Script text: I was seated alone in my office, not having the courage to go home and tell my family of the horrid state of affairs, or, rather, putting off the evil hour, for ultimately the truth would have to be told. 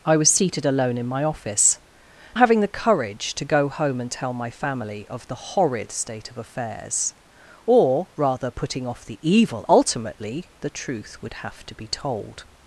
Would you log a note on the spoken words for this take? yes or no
yes